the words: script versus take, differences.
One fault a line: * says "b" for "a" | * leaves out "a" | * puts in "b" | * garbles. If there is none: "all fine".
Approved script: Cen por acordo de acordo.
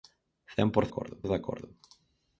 all fine